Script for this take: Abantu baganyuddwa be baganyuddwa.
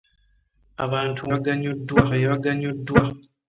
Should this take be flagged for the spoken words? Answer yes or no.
no